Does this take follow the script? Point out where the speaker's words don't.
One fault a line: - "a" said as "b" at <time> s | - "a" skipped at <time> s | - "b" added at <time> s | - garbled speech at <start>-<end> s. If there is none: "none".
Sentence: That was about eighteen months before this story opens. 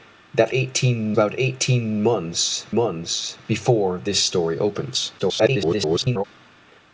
- "was" said as "eighteen" at 0.5 s
- "months" added at 2.7 s
- garbled speech at 5.2-6.2 s